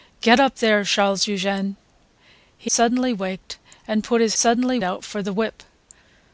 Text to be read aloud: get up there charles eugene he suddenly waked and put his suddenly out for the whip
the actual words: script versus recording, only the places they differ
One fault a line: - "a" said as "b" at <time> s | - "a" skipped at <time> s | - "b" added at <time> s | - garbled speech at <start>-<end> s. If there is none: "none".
none